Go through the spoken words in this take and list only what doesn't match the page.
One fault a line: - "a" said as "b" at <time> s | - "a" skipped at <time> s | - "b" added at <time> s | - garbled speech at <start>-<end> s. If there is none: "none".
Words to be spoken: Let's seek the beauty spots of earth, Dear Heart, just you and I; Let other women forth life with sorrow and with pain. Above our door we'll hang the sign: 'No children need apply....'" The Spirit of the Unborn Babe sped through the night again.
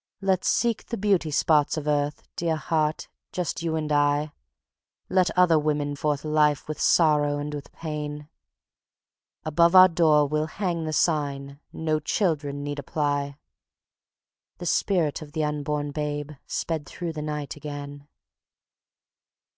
none